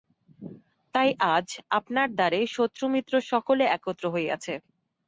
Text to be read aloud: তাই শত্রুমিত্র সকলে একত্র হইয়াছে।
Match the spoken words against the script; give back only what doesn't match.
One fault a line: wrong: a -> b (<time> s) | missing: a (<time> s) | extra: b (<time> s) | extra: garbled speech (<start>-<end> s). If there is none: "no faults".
extra: আজ আপনার দ্বারে (1.4 s)